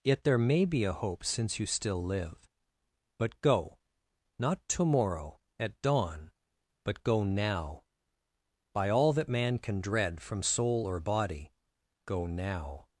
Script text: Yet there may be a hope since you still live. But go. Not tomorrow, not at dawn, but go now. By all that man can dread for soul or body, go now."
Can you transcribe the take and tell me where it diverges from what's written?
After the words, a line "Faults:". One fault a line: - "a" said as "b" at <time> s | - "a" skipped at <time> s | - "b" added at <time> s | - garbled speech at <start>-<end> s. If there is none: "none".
Yet there may be a hope since you still live. But go. Not tomorrow, at dawn, but go now. By all that man can dread from soul or body, go now."
Faults:
- "not" skipped at 5.4 s
- "for" said as "from" at 10.2 s